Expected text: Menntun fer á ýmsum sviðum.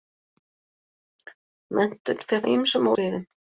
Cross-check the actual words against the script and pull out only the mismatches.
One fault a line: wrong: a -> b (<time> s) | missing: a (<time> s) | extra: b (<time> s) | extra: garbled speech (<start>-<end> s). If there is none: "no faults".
no faults